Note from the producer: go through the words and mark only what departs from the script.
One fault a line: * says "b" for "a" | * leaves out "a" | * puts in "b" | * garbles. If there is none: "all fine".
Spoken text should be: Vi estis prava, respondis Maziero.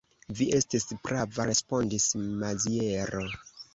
all fine